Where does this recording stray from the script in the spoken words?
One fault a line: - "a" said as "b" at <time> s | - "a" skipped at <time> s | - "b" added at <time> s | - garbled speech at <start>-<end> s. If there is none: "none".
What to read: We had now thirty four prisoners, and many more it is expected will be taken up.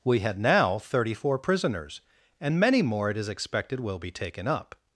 none